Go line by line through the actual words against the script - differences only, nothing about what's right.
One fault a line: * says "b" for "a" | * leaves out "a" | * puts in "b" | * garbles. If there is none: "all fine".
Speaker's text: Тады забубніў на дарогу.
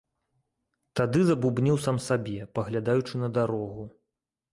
* puts in "сам сабе паглядаючы"